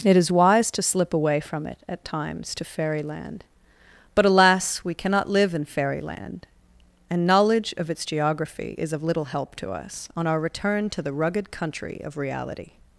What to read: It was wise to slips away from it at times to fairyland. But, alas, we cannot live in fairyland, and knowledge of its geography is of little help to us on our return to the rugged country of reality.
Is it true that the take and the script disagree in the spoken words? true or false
true